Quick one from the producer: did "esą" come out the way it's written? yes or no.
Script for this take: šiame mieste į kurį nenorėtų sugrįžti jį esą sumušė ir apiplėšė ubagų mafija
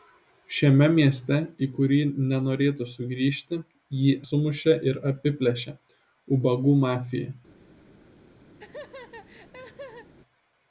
no